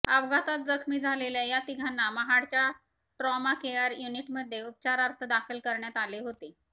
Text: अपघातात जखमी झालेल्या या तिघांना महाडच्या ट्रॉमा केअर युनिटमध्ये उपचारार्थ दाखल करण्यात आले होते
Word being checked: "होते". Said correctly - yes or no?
yes